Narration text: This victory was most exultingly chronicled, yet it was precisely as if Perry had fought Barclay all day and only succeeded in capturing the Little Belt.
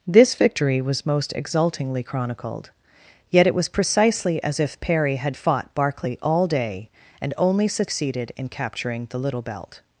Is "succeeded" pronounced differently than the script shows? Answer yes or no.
no